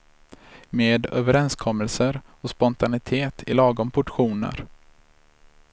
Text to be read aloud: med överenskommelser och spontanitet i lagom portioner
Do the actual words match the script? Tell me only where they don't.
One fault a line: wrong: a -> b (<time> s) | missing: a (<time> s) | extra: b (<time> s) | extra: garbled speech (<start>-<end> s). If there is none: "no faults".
no faults